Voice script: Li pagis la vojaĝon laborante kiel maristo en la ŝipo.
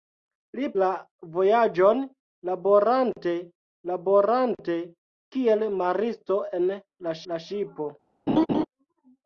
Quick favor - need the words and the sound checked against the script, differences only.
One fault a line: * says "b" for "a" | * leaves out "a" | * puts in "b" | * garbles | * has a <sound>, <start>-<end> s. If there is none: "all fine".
* leaves out "pagis"
* puts in "laborante"
* puts in "la"
* has a laugh, 8.3-8.7 s